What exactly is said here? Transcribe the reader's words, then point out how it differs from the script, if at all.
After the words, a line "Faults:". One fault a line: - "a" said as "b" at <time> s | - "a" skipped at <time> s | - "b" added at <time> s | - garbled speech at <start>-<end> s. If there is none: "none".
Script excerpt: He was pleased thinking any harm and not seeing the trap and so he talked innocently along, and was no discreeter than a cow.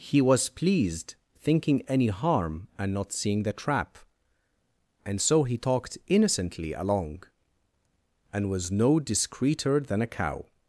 He was pleased thinking any harm and not seeing the trap and so he talked innocently along, and was no discreeter than a cow.
Faults:
none